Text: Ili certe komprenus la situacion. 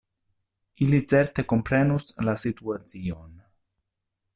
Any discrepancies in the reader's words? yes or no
no